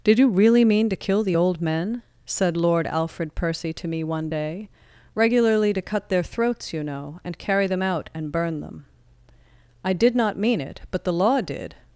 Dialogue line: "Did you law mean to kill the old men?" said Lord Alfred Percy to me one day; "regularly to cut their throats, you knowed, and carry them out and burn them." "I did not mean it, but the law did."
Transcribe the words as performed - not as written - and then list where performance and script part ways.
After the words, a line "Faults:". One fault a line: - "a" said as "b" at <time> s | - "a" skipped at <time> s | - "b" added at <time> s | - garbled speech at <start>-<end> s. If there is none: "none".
"Did you really mean to kill the old men?" said Lord Alfred Percy to me one day; "regularly to cut their throats, you know, and carry them out and burn them." "I did not mean it, but the law did."
Faults:
- "law" said as "really" at 0.3 s
- "knowed" said as "know" at 6.8 s